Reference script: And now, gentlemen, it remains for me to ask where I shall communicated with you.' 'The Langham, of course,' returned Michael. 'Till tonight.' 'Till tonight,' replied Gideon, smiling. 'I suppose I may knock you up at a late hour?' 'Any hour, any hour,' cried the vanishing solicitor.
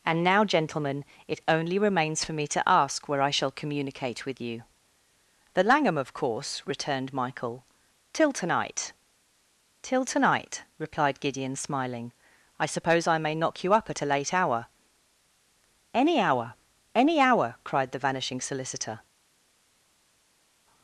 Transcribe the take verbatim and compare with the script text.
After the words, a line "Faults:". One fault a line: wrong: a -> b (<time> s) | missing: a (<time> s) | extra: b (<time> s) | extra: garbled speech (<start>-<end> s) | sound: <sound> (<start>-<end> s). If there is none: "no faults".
And now, gentlemen, it only remains for me to ask where I shall communicate with you.' 'The Langham, of course,' returned Michael. 'Till tonight.' 'Till tonight,' replied Gideon, smiling. 'I suppose I may knock you up at a late hour?' 'Any hour, any hour,' cried the vanishing solicitor.
Faults:
extra: only (1.5 s)
wrong: communicated -> communicate (3.5 s)